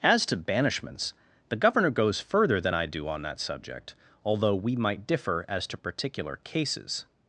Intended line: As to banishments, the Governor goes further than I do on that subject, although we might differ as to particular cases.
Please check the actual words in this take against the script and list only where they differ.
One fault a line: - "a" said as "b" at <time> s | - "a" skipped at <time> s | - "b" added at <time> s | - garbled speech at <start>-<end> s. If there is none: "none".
none